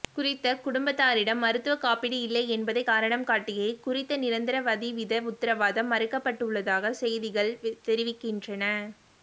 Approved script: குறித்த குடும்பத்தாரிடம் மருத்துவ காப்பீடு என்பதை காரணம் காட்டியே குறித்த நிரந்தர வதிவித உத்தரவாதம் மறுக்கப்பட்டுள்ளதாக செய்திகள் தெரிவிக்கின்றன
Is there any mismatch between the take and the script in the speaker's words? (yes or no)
yes